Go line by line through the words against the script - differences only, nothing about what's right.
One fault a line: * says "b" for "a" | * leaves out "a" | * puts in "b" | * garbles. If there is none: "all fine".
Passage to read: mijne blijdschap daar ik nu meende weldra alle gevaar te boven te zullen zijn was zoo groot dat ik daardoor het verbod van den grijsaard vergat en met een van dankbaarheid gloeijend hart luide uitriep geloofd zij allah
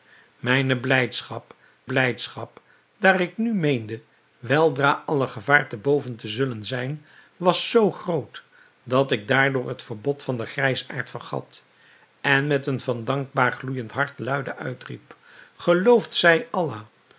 * puts in "blijdschap"